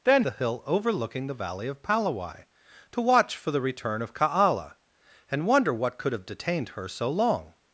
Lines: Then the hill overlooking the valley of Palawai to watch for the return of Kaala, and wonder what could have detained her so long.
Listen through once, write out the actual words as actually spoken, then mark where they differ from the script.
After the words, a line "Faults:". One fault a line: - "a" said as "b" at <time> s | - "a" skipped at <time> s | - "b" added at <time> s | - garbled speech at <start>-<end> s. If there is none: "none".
Then the hill overlooking the valley of Palawai to watch for the return of Kaala, and wonder what could have detained her so long.
Faults:
none